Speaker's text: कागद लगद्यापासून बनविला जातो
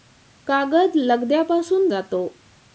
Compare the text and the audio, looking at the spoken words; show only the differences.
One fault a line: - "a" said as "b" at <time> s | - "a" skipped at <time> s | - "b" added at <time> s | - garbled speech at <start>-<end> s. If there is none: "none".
- "बनविला" skipped at 1.9 s